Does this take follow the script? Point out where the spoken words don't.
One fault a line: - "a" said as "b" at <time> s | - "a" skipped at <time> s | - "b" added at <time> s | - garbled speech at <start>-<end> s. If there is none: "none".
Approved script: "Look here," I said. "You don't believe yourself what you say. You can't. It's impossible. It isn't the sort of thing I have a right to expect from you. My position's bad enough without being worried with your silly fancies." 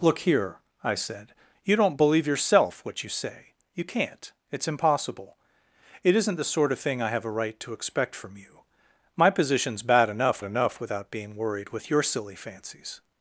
- "enough" added at 10.4 s